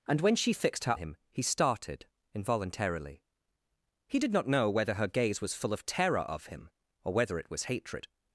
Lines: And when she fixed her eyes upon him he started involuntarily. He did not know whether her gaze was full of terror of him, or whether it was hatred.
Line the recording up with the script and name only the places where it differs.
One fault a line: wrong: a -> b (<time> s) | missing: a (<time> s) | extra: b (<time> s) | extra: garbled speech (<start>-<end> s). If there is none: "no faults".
missing: eyes upon (1.0 s)